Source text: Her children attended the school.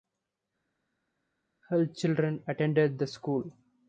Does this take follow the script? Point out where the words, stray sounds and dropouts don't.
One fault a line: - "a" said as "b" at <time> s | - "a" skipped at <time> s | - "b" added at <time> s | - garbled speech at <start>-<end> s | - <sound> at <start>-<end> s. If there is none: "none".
none